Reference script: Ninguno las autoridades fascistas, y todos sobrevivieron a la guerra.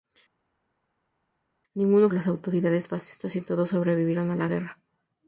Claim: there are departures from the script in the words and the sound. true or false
false